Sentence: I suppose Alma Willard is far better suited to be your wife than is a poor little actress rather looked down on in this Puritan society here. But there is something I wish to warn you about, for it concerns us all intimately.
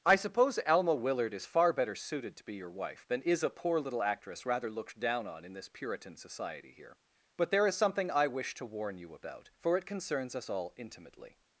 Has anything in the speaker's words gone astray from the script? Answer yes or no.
no